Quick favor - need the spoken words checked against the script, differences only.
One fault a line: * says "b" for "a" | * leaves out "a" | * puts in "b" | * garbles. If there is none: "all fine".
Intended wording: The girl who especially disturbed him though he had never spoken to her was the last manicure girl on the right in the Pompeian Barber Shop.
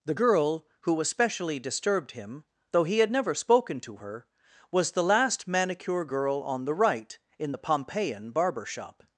all fine